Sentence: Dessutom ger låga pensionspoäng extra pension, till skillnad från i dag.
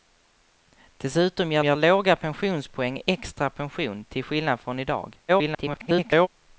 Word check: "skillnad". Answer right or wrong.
right